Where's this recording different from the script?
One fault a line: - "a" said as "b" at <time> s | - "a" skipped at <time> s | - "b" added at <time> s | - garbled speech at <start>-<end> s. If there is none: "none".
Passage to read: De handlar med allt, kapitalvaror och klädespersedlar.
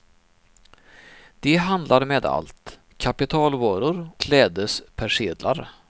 - "och" skipped at 4.1 s